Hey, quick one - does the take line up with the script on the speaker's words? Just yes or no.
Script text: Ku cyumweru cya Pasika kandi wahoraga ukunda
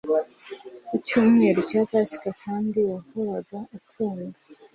yes